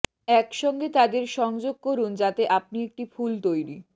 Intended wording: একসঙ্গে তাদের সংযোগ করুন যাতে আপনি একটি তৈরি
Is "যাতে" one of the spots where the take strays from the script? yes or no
no